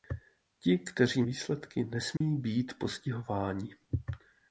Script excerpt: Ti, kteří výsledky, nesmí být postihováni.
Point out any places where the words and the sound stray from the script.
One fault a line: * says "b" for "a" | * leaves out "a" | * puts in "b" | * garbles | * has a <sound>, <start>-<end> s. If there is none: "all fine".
* has a dropout, 2.2-2.2 s